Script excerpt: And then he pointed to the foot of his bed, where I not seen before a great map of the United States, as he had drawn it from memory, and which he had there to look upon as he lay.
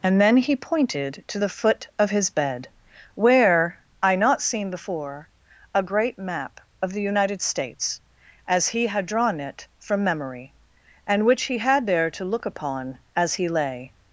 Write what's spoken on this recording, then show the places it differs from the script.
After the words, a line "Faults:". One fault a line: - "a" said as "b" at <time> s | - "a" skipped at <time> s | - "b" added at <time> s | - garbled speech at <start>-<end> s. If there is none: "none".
And then he pointed to the foot of his bed, where I not seen before a great map of the United States, as he had drawn it from memory, and which he had there to look upon as he lay.
Faults:
none